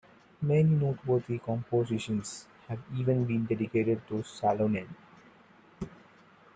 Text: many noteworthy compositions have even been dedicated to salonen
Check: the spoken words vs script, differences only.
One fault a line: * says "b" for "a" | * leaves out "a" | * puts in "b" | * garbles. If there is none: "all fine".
all fine